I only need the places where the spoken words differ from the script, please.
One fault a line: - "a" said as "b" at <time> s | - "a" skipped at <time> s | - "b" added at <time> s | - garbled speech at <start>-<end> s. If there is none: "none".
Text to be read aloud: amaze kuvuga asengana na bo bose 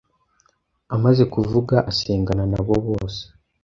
none